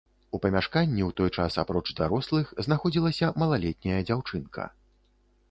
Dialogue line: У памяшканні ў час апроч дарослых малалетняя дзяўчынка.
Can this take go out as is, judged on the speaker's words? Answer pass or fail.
fail